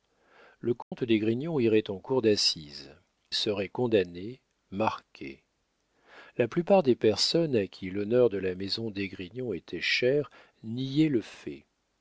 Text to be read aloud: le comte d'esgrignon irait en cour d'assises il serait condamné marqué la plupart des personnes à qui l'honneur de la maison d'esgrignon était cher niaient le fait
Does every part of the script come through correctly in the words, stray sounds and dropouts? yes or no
no